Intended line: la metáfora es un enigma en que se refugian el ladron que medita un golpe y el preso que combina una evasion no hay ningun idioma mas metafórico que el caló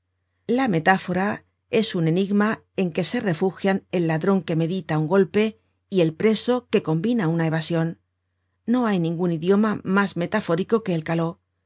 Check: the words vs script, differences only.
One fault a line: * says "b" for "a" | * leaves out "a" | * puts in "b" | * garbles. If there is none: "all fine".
all fine